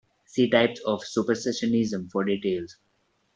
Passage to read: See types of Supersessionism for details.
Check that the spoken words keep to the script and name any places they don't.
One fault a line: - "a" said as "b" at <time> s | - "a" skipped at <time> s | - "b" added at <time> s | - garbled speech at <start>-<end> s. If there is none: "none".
none